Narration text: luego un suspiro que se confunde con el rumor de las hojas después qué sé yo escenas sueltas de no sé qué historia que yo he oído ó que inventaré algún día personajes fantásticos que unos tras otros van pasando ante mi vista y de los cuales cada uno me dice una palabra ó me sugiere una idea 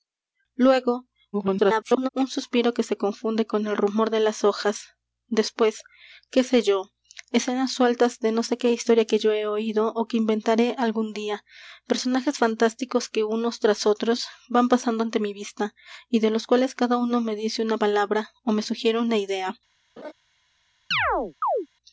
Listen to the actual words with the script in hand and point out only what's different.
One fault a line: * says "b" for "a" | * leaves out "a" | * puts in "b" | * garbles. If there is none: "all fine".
* garbles